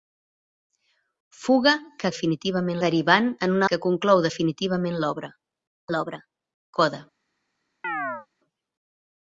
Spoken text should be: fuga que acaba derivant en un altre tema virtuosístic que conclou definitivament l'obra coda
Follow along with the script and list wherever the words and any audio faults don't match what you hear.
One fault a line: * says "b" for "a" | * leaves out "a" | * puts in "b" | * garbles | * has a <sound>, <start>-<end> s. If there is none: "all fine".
* says "definitivament" for "acaba"
* leaves out "altre tema virtuosístic"
* puts in "l'obra"
* has a chirp, 7.8-8.3 s